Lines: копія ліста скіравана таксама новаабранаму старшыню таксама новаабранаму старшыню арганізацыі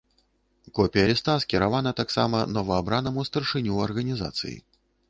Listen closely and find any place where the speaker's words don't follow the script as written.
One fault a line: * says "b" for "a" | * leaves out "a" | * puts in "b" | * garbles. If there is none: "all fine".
* leaves out "таксама новаабранаму старшыню"